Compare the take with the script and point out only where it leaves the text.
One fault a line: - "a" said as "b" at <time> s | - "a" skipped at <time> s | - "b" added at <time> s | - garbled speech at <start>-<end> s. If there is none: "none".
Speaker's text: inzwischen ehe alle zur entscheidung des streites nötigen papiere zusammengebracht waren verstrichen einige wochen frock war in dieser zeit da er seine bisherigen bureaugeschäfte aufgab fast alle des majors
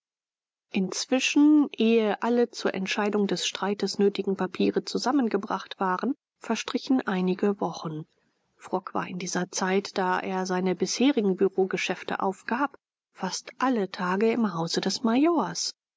- "tage im hause" added at 13.9 s